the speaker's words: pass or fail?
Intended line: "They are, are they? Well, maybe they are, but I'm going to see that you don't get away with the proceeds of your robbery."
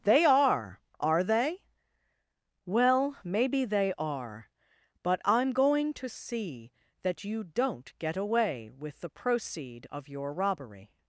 fail